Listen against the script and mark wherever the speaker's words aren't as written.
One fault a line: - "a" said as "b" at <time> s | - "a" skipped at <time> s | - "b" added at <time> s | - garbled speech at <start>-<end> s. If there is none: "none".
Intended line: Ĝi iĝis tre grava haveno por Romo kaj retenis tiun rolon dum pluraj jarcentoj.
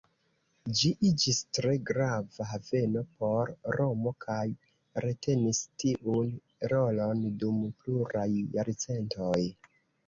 none